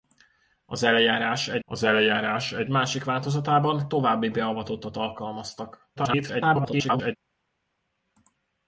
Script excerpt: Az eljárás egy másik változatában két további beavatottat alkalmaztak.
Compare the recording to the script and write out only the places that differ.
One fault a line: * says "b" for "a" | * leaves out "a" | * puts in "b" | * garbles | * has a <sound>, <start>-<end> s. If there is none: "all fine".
* puts in "az eljárás egy"
* leaves out "két"
* garbles